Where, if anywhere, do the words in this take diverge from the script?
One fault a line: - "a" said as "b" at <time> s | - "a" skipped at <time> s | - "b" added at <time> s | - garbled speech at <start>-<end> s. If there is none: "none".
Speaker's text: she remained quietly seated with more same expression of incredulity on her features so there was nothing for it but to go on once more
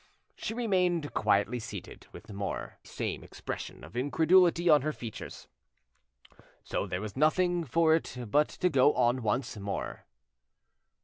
none